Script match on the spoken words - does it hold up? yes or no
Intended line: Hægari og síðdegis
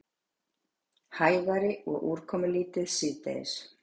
no